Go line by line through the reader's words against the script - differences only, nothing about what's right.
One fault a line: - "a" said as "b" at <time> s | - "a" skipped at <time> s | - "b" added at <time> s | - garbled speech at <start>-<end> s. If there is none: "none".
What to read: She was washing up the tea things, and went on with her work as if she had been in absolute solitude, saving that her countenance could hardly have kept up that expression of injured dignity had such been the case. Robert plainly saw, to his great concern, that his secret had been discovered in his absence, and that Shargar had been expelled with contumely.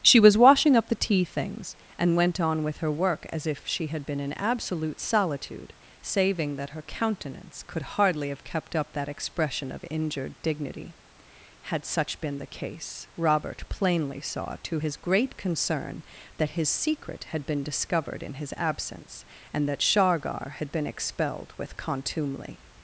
none